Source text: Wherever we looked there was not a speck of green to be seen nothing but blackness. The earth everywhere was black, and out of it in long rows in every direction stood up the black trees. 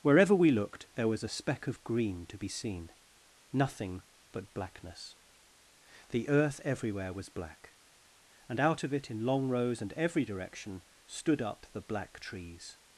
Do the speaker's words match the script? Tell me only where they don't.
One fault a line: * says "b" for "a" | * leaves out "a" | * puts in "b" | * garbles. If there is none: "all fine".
* leaves out "not"
* says "and" for "in"